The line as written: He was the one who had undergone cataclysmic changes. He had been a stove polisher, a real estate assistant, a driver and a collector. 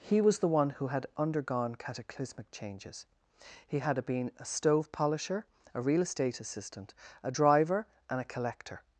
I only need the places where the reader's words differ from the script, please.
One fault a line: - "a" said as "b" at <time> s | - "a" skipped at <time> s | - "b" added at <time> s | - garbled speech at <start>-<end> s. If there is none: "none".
none